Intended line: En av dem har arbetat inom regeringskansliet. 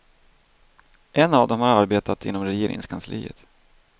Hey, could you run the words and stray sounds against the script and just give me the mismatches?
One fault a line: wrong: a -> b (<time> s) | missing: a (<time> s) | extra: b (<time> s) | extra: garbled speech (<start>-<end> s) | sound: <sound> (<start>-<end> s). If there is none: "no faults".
no faults